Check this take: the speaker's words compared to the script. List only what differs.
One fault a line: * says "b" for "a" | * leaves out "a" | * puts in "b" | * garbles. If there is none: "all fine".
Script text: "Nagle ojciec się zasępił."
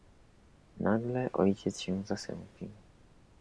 all fine